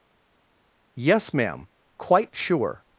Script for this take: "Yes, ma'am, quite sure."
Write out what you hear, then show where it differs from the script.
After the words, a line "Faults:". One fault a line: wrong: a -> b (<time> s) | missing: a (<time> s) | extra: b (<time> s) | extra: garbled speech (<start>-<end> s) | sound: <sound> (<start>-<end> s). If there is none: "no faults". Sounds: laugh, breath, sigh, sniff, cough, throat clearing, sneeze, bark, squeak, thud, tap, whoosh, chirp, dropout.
"Yes, ma'am, quite sure."
Faults:
no faults